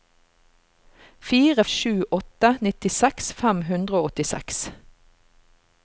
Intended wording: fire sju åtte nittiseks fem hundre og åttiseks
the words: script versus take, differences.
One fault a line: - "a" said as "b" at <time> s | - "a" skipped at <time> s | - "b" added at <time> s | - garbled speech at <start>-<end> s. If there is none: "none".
none